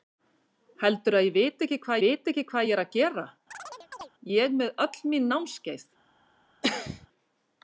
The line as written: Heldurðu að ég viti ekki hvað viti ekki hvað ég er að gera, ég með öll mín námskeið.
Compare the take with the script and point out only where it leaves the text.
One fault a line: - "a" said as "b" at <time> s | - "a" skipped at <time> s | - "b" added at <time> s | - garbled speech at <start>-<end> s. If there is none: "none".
none